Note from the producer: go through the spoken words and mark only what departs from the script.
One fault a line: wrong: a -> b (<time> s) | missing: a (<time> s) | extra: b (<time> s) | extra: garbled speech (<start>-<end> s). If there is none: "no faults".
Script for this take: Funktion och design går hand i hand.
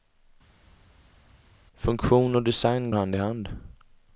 missing: går (2.9 s)